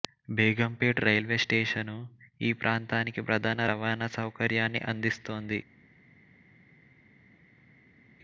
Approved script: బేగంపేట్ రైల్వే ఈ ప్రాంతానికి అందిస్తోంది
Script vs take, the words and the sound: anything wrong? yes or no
yes